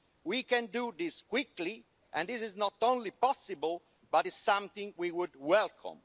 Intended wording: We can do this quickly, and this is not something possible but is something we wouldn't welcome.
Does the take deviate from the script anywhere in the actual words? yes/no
yes